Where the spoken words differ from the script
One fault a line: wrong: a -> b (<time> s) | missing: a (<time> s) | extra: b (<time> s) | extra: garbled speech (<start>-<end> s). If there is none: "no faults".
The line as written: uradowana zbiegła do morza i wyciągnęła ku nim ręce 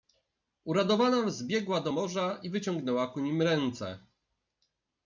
no faults